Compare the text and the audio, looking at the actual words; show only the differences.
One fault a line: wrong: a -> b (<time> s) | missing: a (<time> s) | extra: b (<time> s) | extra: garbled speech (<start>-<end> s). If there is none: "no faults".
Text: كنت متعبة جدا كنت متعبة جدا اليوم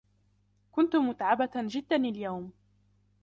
missing: كنت متعبة جدا (1.9 s)